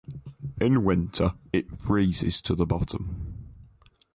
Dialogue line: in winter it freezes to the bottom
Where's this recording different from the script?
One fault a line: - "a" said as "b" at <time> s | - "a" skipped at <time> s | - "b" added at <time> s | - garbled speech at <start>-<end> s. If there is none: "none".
none